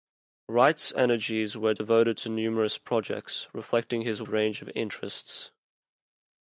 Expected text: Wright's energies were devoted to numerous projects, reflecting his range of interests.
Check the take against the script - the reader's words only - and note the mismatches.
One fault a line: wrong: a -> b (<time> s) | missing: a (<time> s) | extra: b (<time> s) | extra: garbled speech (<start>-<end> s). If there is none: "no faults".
no faults